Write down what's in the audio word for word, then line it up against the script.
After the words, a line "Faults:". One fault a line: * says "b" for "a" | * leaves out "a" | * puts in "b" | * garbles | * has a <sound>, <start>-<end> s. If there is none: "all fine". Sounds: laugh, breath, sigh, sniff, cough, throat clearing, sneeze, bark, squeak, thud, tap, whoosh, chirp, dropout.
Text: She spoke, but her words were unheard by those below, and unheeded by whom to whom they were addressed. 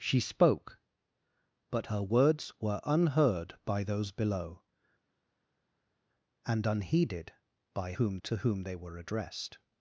She spoke, but her words were unheard by those below, and unheeded by whom to whom they were addressed.
Faults:
all fine